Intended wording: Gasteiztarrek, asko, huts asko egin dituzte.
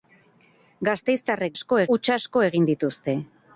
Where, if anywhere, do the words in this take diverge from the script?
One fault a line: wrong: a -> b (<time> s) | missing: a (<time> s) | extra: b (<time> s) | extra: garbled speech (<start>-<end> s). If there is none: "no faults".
no faults